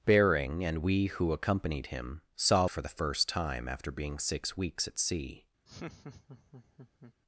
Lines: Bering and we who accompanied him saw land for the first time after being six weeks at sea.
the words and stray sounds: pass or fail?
fail